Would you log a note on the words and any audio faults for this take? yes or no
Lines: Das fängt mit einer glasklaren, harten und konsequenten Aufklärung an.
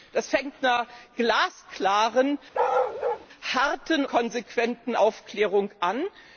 yes